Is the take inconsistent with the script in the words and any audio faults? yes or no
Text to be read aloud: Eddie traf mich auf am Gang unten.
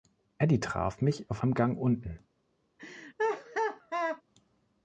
yes